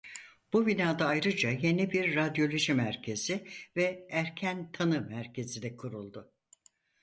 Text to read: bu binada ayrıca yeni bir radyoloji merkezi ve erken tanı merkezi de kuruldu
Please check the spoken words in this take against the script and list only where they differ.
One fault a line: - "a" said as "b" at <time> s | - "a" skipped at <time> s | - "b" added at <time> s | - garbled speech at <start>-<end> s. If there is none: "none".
none